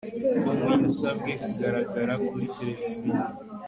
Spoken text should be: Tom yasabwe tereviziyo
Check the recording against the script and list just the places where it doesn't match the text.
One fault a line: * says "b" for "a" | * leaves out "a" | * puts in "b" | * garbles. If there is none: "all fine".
* puts in "kugaragara kuri"